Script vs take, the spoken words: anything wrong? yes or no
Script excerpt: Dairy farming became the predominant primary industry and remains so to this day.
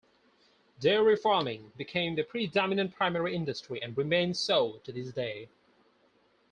no